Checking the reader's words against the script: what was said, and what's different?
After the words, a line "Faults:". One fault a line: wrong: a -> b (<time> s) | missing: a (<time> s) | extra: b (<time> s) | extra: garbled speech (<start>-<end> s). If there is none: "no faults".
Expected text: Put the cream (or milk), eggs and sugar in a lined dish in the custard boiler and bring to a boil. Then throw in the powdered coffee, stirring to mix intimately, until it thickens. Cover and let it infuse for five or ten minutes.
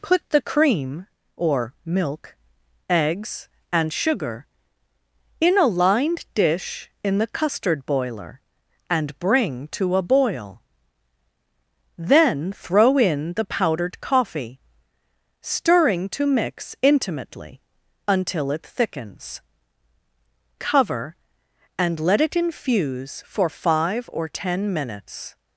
Put the cream (or milk), eggs and sugar in a lined dish in the custard boiler and bring to a boil. Then throw in the powdered coffee, stirring to mix intimately, until it thickens. Cover and let it infuse for five or ten minutes.
Faults:
no faults